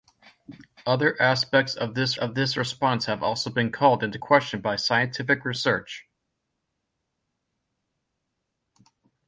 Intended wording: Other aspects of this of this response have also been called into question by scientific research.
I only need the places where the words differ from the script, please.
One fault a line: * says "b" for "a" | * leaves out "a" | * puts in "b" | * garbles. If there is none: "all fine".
all fine